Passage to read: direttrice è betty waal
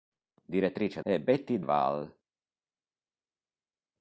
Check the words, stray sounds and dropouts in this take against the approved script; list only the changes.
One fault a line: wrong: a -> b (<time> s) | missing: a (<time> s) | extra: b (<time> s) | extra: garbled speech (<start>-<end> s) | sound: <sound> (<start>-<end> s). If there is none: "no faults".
no faults